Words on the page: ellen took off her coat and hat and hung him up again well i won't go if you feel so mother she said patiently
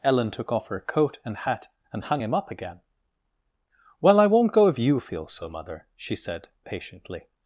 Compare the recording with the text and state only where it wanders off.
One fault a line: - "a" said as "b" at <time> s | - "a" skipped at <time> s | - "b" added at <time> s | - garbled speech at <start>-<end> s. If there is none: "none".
none